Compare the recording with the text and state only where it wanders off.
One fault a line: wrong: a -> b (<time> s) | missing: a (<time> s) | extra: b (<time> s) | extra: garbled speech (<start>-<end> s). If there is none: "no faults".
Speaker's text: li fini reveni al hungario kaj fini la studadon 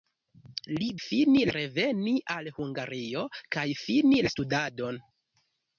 no faults